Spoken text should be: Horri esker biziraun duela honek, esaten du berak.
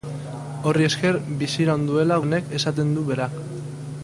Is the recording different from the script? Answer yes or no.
no